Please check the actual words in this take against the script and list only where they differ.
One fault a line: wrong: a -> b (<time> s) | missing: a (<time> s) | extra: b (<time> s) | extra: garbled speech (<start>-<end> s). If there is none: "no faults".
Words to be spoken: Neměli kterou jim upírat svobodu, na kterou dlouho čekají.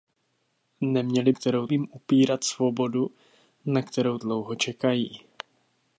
no faults